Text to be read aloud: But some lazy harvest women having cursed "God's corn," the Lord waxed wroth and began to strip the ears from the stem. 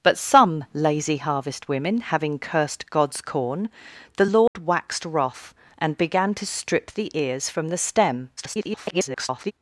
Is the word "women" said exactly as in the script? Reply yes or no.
yes